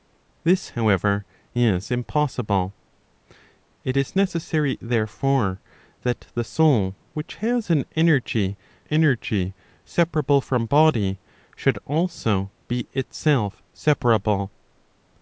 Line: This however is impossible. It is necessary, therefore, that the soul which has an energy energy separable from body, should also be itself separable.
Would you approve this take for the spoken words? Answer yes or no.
yes